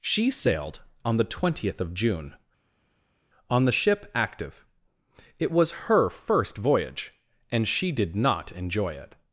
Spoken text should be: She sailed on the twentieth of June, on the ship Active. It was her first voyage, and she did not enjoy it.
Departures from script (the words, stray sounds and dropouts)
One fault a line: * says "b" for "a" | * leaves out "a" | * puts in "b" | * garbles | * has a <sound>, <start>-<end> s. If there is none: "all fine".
all fine